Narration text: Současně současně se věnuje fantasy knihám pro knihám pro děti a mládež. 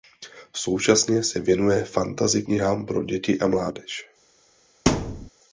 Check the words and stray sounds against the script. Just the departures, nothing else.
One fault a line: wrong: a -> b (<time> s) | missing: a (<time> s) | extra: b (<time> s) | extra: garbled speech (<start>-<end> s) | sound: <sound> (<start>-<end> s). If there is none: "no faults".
missing: současně (1.2 s)
missing: knihám pro (3.0 s)
sound: thud (4.9-5.3 s)